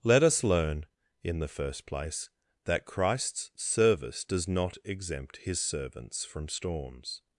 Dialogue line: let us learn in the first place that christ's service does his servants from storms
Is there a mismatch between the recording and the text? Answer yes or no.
yes